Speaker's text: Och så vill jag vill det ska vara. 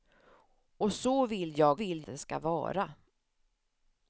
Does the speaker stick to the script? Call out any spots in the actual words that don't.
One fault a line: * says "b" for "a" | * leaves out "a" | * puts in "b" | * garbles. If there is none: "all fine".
all fine